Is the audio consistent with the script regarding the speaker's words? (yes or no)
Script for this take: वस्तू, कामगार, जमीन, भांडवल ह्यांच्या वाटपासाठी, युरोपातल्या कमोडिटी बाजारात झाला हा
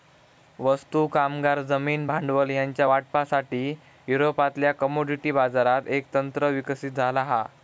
no